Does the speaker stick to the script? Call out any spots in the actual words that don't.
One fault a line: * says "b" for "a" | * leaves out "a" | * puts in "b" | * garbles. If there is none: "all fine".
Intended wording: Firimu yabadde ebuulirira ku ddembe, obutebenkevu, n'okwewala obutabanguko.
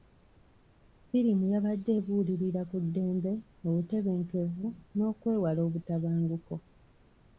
all fine